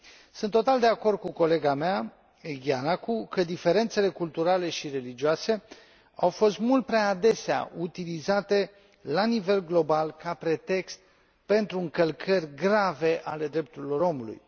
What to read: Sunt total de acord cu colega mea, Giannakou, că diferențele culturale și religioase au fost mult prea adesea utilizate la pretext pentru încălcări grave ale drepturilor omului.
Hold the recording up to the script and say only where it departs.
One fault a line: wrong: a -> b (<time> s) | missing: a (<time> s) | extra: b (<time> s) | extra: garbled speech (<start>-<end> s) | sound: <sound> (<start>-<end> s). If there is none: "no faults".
extra: nivel global ca (9.2 s)